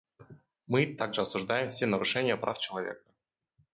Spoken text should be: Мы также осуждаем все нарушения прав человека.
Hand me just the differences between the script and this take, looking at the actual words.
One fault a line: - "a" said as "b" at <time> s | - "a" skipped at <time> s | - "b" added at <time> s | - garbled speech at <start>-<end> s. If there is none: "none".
none